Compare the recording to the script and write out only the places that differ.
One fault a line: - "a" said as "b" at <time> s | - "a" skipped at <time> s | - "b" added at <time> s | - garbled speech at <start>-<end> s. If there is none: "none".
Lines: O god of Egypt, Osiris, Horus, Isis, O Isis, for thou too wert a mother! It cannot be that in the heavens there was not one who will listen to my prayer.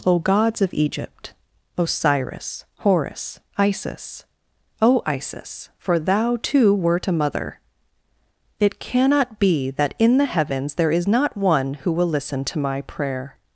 - "god" said as "gods" at 0.2 s
- "was" said as "is" at 10.9 s